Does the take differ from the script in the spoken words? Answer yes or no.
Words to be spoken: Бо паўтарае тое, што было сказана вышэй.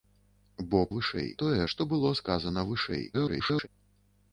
yes